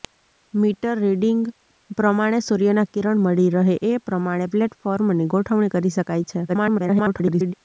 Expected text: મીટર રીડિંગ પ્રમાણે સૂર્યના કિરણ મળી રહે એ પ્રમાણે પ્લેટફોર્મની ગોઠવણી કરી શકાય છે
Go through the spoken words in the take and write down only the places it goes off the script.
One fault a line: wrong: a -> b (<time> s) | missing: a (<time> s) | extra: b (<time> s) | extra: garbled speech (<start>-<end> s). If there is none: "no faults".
extra: garbled speech (6.5-7.5 s)